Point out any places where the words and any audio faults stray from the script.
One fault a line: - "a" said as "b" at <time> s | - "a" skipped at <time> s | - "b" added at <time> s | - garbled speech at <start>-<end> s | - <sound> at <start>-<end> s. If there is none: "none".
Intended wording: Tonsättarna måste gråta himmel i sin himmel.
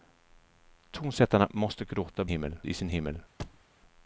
- thud at 3.4-3.6 s